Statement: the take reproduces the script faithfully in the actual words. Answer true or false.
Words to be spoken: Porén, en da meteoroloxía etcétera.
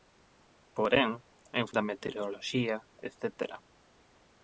true